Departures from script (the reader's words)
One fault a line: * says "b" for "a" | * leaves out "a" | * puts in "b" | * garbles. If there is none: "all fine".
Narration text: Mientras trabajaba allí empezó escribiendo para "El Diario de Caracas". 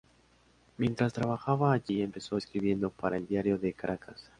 all fine